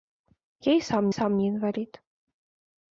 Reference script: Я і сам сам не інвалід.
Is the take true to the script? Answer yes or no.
yes